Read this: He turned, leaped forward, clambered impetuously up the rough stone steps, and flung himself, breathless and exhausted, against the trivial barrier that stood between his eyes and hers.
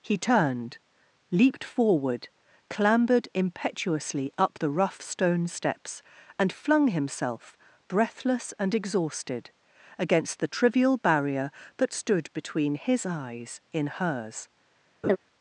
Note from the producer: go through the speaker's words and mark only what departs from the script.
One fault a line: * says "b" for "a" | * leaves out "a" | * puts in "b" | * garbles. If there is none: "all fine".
* says "in" for "and"